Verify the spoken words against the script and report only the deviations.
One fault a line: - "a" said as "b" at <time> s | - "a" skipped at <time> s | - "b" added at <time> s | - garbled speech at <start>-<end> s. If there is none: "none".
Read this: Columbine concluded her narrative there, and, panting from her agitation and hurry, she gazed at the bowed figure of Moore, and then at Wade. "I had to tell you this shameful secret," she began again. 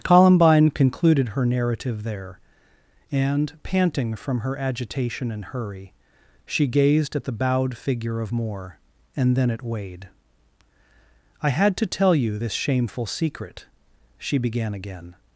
none